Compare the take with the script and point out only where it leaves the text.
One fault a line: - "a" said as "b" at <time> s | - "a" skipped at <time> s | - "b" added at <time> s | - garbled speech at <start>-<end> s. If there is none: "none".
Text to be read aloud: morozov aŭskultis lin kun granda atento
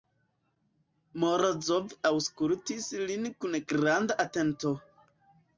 none